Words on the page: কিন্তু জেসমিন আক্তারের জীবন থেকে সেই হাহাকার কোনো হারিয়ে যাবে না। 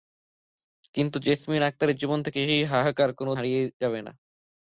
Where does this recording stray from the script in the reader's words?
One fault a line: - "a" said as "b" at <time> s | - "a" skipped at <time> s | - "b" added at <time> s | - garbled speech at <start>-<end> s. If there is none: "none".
none